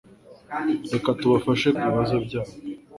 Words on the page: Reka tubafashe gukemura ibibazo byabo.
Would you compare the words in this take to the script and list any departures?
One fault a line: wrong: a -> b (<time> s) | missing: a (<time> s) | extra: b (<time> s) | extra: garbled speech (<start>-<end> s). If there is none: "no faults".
missing: gukemura (1.7 s)